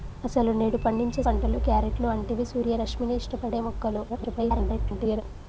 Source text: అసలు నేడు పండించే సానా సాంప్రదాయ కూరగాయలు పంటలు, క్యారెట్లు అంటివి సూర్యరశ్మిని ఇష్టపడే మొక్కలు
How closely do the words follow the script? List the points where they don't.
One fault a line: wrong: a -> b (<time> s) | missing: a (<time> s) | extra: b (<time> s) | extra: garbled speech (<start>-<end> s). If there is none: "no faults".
missing: సానా సాంప్రదాయ కూరగాయలు (1.2 s)
extra: garbled speech (4.1-5.2 s)